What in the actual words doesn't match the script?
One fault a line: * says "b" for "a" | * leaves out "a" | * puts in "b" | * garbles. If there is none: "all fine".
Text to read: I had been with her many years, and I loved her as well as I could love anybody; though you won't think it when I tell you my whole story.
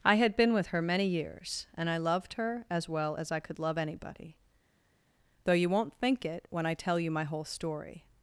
all fine